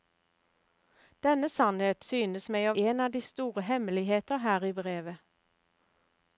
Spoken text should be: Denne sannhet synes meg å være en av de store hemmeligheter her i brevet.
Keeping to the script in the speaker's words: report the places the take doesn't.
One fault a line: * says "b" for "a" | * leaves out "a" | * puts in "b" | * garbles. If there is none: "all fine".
* leaves out "være"